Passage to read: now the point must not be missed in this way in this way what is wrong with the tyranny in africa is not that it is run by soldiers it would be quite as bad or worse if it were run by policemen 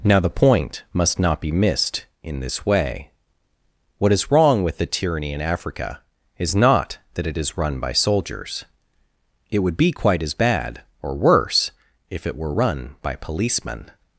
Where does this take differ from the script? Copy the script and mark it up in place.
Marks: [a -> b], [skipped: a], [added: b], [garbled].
now the point must not be missed in this way [skipped: in this way] what is wrong with the tyranny in africa is not that it is run by soldiers it would be quite as bad or worse if it were run by policemen